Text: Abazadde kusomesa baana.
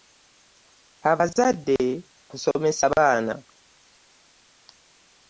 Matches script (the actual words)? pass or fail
pass